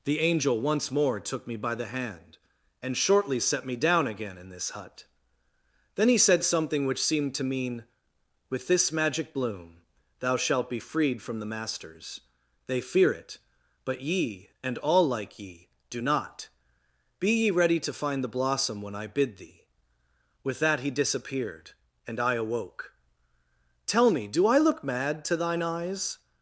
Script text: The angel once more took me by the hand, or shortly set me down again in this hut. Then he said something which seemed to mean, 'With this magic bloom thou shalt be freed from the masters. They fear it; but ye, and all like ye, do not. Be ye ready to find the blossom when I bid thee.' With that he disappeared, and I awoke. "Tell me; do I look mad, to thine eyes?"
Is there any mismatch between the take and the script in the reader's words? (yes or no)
yes